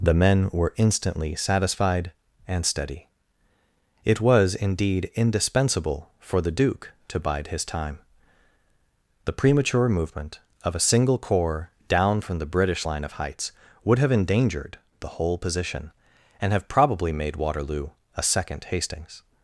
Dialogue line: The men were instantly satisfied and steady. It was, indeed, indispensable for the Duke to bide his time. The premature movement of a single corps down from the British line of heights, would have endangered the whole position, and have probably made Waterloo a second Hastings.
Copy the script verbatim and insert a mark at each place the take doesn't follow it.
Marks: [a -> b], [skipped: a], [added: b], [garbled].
The men were instantly satisfied and steady. It was, indeed, indispensable for the Duke to bide his time. The premature movement of a single corps down from the British line of heights, would have endangered the whole position, and have probably made Waterloo a second Hastings.